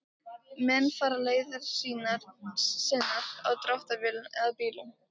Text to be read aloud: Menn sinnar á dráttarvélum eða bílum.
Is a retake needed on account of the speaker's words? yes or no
yes